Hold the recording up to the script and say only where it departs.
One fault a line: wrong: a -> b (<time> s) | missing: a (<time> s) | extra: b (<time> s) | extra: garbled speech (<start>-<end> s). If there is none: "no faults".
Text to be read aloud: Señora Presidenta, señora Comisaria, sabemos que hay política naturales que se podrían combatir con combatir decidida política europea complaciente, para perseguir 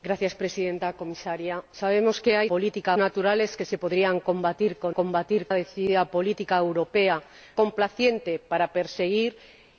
no faults